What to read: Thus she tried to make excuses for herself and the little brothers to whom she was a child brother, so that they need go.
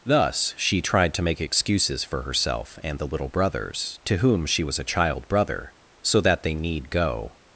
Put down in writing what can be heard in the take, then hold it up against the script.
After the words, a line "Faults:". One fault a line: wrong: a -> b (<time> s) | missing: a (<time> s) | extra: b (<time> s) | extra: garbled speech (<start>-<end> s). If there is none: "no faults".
Thus she tried to make excuses for herself and the little brothers to whom she was a child brother, so that they need go.
Faults:
no faults